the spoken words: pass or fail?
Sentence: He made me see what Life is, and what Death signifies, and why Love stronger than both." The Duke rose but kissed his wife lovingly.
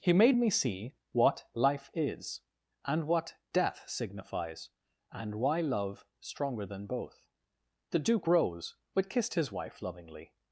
pass